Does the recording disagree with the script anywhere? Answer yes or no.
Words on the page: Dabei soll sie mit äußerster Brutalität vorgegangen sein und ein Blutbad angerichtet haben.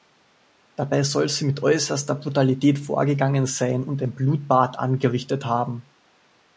no